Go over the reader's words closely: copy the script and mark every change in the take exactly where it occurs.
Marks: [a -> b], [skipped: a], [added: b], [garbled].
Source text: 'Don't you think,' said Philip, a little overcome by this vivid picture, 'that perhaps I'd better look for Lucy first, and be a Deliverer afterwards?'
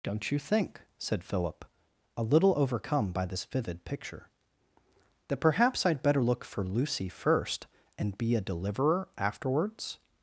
'Don't you think,' said Philip, a little overcome by this vivid picture, 'that perhaps I'd better look for Lucy first, and be a Deliverer afterwards?'